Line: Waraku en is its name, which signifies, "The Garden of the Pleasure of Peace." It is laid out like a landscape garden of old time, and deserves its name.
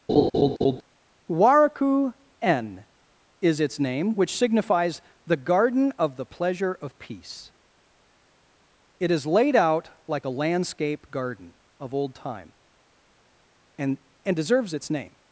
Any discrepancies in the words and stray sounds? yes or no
yes